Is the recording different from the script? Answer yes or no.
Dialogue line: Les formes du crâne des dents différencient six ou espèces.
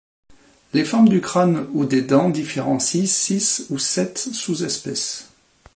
yes